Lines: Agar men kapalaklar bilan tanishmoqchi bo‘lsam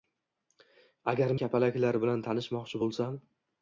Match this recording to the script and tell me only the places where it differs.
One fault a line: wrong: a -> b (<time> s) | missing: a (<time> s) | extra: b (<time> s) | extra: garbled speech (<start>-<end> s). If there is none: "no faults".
missing: men (1.4 s)